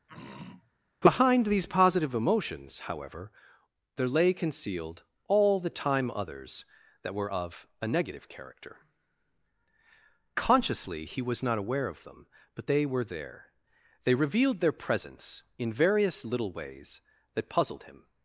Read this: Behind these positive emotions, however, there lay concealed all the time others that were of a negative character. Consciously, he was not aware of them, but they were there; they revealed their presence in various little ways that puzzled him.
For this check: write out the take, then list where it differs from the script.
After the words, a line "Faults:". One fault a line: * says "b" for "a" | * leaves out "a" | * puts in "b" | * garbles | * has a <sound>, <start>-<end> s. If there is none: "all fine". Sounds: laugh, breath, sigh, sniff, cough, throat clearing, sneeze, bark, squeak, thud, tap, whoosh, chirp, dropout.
Behind these positive emotions, however, there lay concealed all the time others that were of a negative character. Consciously, he was not aware of them, but they were there; they revealed their presence in various little ways that puzzled him.
Faults:
* has a throat clearing, 0.1-0.7 s